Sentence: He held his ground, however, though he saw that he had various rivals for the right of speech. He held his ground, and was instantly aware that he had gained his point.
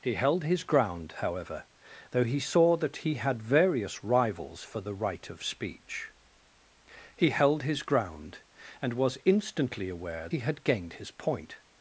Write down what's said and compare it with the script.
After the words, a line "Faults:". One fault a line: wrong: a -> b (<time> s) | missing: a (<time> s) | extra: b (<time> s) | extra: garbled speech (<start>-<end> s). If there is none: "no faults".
He held his ground, however, though he saw that he had various rivals for the right of speech. He held his ground, and was instantly aware he had gained his point.
Faults:
missing: that (10.3 s)